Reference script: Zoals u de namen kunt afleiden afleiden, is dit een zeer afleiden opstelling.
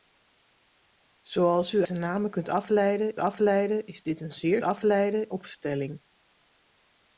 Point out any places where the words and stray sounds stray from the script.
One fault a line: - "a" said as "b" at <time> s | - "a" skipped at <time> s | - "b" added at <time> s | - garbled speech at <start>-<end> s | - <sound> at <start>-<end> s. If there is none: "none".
none